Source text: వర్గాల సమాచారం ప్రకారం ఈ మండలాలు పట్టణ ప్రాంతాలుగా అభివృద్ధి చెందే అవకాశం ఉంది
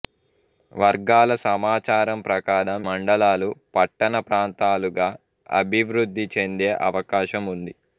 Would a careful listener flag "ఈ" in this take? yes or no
yes